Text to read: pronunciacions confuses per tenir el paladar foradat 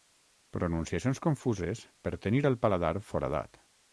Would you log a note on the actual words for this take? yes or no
no